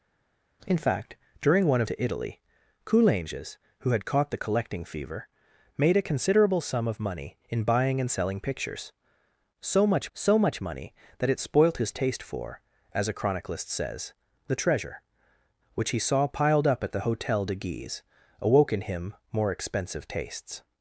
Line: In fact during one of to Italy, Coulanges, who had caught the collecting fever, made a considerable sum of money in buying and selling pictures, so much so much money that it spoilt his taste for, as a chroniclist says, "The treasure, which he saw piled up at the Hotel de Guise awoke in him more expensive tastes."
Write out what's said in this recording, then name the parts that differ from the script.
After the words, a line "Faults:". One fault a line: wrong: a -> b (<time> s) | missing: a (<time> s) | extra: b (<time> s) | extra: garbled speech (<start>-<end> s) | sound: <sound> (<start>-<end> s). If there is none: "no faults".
In fact during one of to Italy, Coulanges, who had caught the collecting fever, made a considerable sum of money in buying and selling pictures, so much so much money that it spoilt his taste for, as a chroniclist says, "The treasure, which he saw piled up at the Hotel de Guise awoke in him more expensive tastes."
Faults:
no faults